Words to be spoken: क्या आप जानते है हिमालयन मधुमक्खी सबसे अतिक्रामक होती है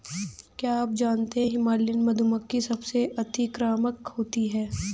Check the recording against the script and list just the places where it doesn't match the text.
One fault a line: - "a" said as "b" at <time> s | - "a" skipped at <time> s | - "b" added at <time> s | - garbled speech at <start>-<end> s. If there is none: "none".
none